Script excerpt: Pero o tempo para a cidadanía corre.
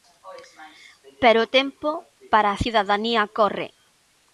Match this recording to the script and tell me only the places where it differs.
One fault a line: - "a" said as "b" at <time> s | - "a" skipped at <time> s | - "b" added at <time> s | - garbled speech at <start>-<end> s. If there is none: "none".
none